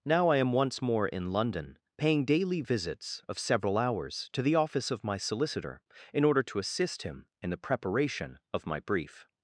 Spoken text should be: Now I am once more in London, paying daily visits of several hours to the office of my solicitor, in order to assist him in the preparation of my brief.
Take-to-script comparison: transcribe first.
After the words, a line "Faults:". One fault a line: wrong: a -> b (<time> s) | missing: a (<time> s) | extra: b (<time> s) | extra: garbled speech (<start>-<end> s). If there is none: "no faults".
Now I am once more in London, paying daily visits of several hours to the office of my solicitor, in order to assist him in the preparation of my brief.
Faults:
no faults